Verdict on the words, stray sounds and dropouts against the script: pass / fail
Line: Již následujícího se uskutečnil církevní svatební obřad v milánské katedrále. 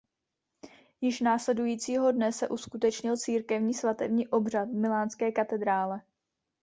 fail